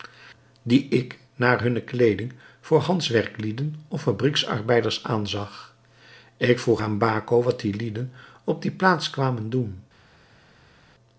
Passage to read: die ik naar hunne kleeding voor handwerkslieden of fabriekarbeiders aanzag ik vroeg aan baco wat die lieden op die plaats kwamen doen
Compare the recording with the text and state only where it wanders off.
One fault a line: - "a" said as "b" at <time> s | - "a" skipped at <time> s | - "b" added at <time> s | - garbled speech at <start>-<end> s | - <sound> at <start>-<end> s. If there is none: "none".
none